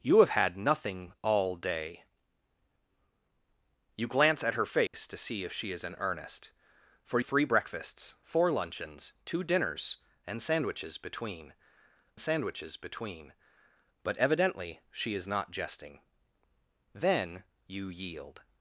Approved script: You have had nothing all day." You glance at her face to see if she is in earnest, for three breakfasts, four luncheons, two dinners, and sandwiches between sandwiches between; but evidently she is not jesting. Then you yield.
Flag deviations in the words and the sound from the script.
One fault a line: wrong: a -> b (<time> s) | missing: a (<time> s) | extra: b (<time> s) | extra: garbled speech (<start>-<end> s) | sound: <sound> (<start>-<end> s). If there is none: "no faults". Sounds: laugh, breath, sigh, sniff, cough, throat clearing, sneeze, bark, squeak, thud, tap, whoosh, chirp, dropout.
sound: dropout (4.9-4.9 s)